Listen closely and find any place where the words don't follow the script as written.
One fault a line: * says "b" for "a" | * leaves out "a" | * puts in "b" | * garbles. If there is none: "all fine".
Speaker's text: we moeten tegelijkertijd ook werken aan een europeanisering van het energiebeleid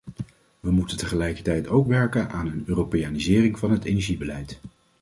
all fine